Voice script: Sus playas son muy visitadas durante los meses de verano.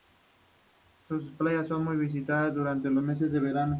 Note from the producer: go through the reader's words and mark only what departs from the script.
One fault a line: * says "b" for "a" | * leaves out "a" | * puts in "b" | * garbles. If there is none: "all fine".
all fine